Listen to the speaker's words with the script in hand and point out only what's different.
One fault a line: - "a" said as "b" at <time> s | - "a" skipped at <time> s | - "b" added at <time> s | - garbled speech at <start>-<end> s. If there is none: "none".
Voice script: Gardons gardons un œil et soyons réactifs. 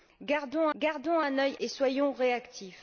none